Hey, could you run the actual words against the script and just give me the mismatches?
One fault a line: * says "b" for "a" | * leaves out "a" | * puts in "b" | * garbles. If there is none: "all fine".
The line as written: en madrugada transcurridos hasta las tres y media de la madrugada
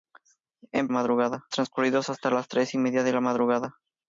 all fine